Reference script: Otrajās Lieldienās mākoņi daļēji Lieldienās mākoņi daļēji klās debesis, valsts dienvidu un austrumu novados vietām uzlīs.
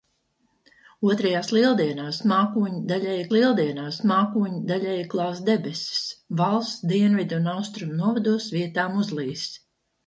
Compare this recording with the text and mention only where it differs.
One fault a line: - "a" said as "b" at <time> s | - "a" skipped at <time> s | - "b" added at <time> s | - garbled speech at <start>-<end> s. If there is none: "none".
none